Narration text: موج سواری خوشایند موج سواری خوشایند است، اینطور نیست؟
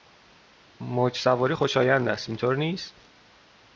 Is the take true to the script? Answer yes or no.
no